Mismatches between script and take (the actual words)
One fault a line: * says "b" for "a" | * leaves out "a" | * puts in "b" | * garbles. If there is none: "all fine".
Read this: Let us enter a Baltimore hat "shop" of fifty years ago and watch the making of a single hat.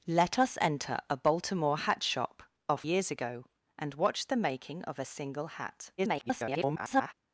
* leaves out "fifty"
* garbles